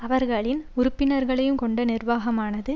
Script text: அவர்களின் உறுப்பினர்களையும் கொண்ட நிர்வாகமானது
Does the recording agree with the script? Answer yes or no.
yes